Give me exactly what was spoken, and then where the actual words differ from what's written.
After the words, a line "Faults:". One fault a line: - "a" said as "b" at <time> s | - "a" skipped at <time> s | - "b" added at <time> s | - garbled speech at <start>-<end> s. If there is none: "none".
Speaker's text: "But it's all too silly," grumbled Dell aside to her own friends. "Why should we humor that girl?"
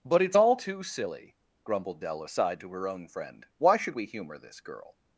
"But it's all too silly," grumbled Dell aside to her own friend. "Why should we humor this girl?"
Faults:
- "friends" said as "friend" at 3.1 s
- "that" said as "this" at 4.4 s